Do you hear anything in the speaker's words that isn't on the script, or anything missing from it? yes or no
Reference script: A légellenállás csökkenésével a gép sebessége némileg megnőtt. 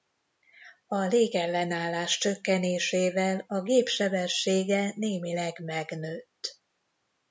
no